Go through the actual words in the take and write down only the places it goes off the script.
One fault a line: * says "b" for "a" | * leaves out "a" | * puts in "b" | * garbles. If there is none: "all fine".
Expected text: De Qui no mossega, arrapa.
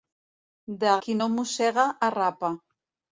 all fine